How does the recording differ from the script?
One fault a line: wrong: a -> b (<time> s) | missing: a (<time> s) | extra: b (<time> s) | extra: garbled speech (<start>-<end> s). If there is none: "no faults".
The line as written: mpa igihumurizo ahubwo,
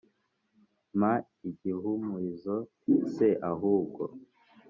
extra: se (3.1 s)